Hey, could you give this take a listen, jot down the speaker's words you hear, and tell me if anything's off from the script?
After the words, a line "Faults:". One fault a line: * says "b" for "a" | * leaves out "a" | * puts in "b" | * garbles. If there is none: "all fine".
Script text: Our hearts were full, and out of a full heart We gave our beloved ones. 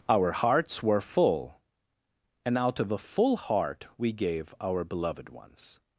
Our hearts were full, and out of a full heart We gave our beloved ones.
Faults:
all fine